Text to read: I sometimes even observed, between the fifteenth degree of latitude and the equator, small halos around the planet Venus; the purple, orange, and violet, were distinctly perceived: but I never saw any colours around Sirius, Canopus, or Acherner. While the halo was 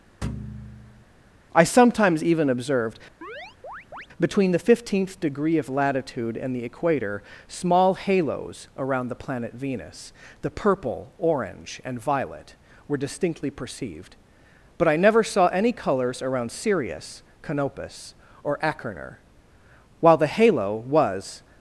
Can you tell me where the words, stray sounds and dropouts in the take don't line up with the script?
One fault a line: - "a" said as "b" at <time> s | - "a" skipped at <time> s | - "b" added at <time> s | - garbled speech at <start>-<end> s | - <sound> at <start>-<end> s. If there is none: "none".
- thud at 0.2-1.1 s
- chirp at 3.2-4.1 s